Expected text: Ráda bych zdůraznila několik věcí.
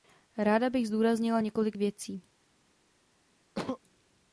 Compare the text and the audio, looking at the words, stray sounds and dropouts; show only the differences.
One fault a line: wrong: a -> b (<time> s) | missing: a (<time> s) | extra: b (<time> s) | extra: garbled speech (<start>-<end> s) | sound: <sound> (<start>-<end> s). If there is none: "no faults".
sound: sneeze (3.5-3.8 s)